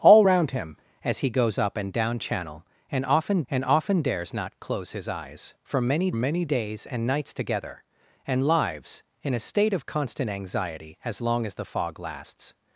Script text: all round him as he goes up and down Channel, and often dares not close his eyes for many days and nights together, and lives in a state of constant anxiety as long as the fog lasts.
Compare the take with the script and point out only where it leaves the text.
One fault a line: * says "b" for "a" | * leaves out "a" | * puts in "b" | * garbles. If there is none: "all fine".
* puts in "and often"
* puts in "many"